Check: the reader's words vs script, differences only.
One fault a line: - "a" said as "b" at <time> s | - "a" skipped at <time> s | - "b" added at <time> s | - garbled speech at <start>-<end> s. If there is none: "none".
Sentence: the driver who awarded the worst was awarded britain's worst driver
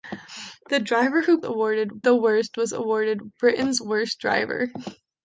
none